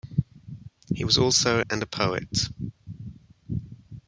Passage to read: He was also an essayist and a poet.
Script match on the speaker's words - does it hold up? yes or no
no